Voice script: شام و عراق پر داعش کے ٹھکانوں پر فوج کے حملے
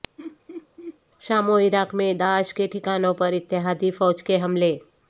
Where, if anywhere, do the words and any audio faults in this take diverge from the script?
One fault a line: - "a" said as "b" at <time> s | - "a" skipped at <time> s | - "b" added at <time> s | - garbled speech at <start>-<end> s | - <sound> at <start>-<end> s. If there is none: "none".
- laugh at 0.2-1.0 s
- "پر" said as "میں" at 1.9 s
- "اتحادی" added at 3.3 s